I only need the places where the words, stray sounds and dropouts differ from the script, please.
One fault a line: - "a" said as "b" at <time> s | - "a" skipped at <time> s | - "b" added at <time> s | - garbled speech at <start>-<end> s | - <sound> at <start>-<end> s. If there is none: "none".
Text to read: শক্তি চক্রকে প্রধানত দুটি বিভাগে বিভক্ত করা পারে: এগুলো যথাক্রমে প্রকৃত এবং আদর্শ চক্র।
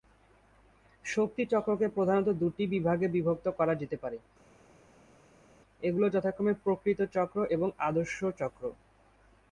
- "যেতে" added at 3.8 s
- "চক্র" added at 7.1 s